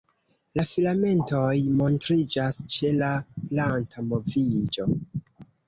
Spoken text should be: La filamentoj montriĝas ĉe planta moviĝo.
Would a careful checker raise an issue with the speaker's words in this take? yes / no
yes